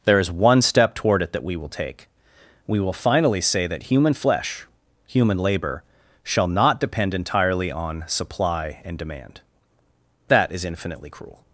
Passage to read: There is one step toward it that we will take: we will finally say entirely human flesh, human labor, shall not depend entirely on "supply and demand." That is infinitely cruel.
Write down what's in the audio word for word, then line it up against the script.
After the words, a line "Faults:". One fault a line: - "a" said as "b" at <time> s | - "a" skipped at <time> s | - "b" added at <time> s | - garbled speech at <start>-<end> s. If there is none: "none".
There is one step toward it that we will take: we will finally say that human flesh, human labor, shall not depend entirely on "supply and demand." That is infinitely cruel.
Faults:
- "entirely" said as "that" at 3.7 s